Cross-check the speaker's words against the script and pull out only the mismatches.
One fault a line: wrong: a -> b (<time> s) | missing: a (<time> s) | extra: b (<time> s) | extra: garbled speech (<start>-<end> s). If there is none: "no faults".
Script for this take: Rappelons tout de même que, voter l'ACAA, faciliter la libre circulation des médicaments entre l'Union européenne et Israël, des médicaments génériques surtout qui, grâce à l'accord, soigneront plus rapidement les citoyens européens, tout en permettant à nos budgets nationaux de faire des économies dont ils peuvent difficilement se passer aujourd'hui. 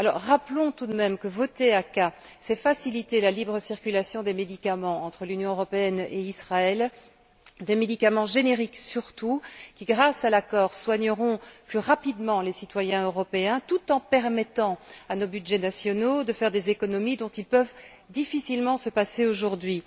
extra: c'est (2.4 s)